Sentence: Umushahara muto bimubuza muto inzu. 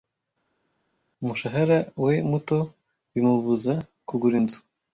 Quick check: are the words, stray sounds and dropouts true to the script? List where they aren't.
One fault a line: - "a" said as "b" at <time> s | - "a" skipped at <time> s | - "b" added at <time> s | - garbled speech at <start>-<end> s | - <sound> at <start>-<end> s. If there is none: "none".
- "we" added at 2.0 s
- "muto" said as "kugura" at 4.1 s